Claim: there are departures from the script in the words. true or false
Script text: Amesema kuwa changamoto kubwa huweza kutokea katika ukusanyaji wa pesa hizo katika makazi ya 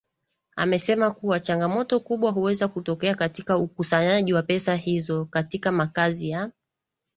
false